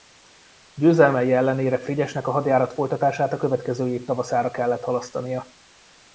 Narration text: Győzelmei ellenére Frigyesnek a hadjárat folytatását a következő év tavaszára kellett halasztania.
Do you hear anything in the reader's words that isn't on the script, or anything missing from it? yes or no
no